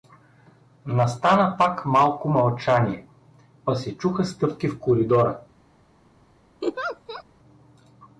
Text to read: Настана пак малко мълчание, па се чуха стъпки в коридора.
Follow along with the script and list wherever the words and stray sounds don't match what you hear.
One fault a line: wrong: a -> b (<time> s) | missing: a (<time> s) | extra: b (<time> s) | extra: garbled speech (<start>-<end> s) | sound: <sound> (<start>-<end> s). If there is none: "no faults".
sound: laugh (6.6-7.2 s)